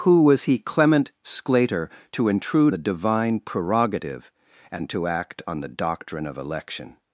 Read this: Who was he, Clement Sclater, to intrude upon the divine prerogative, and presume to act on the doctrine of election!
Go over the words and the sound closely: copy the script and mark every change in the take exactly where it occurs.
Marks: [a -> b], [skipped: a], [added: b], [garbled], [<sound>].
Who was he, Clement Sclater, to intrude [skipped: upon] the divine prerogative, and [skipped: presume] to act on the doctrine of election!